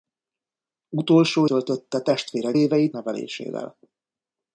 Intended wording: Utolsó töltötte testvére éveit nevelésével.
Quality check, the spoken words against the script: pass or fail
pass